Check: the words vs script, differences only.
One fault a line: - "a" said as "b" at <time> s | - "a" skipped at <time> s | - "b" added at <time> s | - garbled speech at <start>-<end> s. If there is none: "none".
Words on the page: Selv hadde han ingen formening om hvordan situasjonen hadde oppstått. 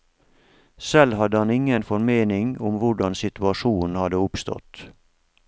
none